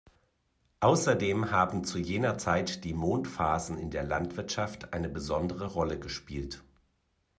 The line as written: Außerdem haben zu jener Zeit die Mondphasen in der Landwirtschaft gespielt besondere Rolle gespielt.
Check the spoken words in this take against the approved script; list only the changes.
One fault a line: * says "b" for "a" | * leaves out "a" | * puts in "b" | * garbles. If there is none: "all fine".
* says "eine" for "gespielt"